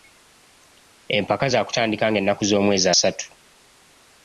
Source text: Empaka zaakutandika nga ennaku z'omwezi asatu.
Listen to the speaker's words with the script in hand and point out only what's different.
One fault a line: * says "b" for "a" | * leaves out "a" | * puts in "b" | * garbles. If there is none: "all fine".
all fine